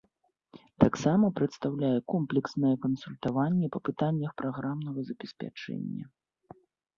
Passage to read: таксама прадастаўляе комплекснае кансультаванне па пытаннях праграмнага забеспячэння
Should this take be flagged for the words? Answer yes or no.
no